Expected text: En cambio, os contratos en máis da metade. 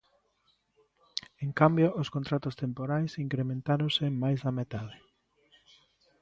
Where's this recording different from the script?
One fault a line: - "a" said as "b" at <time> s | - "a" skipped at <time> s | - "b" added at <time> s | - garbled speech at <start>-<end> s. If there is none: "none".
- "temporais incrementáronse" added at 2.6 s